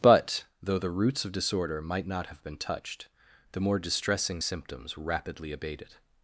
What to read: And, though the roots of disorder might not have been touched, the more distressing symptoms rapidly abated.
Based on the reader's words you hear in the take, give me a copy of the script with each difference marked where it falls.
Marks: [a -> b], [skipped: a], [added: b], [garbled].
[And, -> But] though the roots of disorder might not have been touched, the more distressing symptoms rapidly abated.